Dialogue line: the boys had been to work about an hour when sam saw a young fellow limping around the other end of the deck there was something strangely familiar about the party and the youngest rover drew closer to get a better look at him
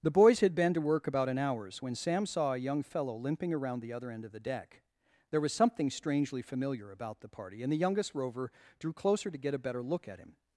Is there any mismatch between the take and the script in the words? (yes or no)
yes